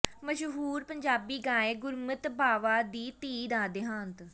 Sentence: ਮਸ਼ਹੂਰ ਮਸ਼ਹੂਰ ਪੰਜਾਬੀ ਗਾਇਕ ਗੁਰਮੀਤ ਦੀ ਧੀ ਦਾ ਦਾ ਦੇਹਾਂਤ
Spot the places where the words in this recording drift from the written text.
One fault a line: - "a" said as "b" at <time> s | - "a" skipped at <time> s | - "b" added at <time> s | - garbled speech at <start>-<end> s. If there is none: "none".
- "ਮਸ਼ਹੂਰ" skipped at 0.8 s
- "ਬਾਵਾ" added at 2.3 s
- "ਦਾ" skipped at 3.7 s